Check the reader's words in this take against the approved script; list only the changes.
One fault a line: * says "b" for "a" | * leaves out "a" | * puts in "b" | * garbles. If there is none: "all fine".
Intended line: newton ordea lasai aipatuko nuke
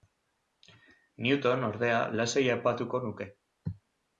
all fine